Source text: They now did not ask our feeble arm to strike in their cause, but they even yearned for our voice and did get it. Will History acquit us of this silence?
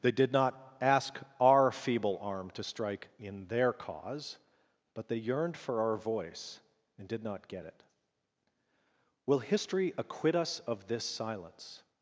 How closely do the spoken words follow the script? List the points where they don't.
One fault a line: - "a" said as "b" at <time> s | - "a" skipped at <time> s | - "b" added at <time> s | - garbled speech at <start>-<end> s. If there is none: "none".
- "now" skipped at 0.1 s
- "even" skipped at 5.2 s
- "not" added at 7.2 s